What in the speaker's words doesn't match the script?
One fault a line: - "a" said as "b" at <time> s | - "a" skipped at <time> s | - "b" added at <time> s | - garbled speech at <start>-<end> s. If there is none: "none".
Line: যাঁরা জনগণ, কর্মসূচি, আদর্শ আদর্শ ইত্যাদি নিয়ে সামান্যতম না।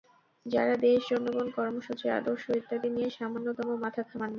- "দেশ" added at 0.8 s
- "আদর্শ" skipped at 2.4 s
- "মাথা ঘামান" added at 3.8 s